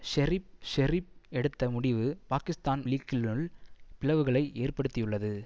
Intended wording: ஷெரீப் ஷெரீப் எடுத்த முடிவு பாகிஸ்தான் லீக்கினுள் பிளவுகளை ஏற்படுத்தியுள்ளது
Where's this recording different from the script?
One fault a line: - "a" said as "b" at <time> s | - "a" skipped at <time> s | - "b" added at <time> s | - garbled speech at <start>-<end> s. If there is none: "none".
none